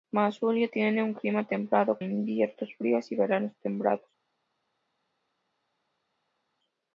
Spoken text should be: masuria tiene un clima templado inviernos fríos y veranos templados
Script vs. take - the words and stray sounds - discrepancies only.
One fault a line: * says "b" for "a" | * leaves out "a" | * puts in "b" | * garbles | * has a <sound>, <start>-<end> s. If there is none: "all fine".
all fine